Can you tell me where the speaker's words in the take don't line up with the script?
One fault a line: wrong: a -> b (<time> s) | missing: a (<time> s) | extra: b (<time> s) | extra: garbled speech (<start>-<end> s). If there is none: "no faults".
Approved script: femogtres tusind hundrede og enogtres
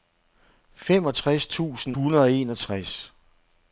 no faults